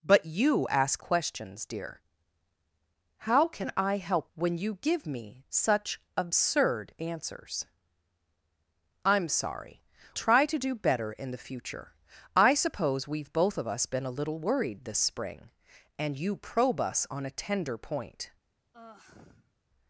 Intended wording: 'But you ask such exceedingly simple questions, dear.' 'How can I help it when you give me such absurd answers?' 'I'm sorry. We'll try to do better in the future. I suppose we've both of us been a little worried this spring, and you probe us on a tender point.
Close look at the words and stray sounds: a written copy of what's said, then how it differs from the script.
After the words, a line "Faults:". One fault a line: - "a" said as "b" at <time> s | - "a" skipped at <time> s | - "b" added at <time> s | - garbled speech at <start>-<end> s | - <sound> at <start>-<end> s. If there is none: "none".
'But you ask questions, dear.' 'How can I help when you give me such absurd answers?' 'I'm sorry. Try to do better in the future. I suppose we've both of us been a little worried this spring, and you probe us on a tender point.
Faults:
- "such exceedingly simple" skipped at 1.0 s
- "it" skipped at 4.3 s
- "We'll" skipped at 9.8 s
- sigh at 18.7-19.5 s